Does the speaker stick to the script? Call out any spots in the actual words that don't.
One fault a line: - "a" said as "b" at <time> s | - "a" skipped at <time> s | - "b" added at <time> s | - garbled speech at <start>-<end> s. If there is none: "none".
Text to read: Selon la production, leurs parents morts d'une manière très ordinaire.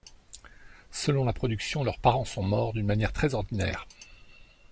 - "sont" added at 2.2 s